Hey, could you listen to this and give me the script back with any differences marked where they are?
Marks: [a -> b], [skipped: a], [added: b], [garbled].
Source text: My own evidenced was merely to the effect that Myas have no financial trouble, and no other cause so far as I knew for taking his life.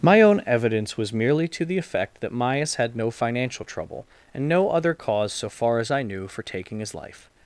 My own [evidenced -> evidence] was merely to the effect that Myas [have -> had] no financial trouble, and no other cause so far as I knew for taking his life.